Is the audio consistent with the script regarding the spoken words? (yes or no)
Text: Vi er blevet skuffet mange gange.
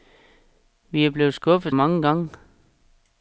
yes